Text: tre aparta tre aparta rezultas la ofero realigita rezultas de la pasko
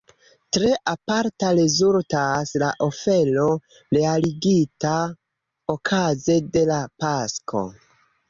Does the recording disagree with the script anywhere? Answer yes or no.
yes